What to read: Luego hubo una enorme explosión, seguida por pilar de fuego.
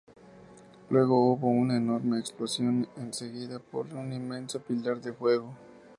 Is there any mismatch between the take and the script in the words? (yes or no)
yes